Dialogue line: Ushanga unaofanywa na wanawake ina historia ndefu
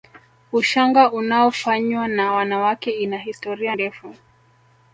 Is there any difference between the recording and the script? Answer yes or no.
no